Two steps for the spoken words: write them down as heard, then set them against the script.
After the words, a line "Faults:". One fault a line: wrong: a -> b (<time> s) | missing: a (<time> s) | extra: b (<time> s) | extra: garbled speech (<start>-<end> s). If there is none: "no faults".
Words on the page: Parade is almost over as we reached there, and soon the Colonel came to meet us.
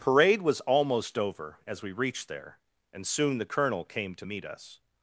Parade was almost over as we reached there, and soon the Colonel came to meet us.
Faults:
wrong: is -> was (0.4 s)